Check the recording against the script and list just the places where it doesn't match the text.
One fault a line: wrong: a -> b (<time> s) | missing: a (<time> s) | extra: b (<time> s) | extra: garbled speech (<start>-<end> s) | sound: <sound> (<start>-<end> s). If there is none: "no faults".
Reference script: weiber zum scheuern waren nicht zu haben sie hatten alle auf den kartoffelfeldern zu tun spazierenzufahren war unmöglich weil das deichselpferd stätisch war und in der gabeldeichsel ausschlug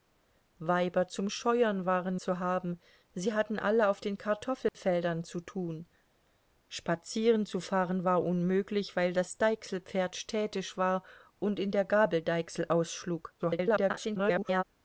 missing: nicht (2.1 s)
sound: dropout (4.7-4.7 s)
extra: garbled speech (13.4-14.6 s)